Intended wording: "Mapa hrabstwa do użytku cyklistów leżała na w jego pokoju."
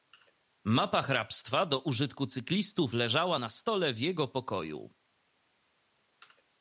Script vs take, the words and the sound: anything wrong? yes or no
yes